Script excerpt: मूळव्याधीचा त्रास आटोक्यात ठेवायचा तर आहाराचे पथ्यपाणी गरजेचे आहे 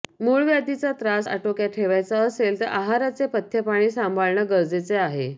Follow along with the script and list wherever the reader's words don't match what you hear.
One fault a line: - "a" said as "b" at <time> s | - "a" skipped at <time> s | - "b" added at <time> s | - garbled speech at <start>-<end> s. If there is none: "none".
- "असेल" added at 2.2 s
- "सांभाळणं" added at 3.9 s